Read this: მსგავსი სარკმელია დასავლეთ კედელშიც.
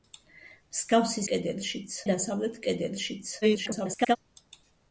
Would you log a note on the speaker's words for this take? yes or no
yes